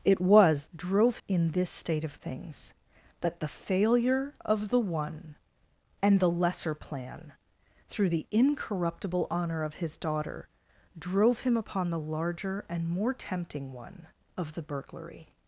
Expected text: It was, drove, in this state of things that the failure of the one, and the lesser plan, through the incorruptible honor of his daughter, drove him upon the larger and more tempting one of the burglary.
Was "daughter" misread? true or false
false